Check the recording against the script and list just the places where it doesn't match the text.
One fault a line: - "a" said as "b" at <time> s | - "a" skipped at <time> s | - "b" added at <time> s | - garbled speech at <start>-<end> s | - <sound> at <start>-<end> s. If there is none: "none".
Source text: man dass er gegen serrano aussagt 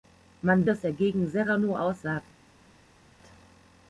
none